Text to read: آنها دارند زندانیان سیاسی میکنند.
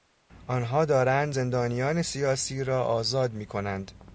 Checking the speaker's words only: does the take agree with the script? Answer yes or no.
no